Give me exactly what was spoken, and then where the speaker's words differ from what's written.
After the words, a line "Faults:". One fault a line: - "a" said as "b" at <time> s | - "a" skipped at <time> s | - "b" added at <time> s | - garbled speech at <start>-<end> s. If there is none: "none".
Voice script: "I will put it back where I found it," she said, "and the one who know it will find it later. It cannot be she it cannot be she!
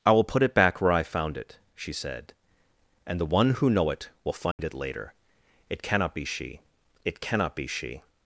"I will put it back where I found it," she said, "and the one who know it will find it later. It cannot be she it cannot be she!
Faults:
none